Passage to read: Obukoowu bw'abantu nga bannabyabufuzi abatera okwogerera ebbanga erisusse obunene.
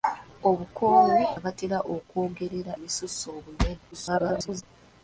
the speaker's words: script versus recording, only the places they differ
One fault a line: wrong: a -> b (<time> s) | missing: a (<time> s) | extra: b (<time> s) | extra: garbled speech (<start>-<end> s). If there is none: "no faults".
missing: bw'abantu nga bannabyabufuzi (1.2 s)
missing: ebbanga (2.7 s)
extra: garbled speech (3.9-4.6 s)